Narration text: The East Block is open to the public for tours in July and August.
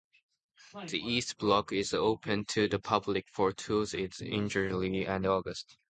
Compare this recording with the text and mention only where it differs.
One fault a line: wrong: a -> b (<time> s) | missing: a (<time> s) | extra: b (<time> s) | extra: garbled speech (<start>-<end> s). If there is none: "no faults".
no faults